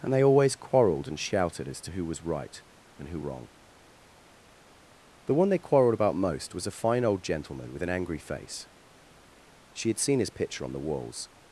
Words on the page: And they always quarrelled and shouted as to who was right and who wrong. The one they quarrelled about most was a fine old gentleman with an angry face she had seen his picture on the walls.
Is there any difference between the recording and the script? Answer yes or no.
no